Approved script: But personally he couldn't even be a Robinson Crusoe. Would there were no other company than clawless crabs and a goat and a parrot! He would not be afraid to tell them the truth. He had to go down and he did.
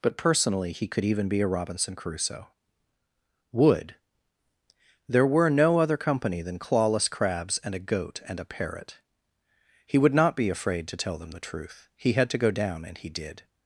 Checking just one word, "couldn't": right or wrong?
wrong